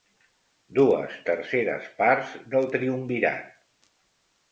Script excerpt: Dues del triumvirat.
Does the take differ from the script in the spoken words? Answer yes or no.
yes